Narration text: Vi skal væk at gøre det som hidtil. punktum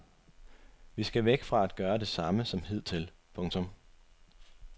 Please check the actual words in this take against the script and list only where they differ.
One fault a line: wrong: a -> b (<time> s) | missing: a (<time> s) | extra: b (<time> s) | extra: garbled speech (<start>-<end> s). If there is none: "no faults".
extra: fra (1.4 s)
extra: samme (2.1 s)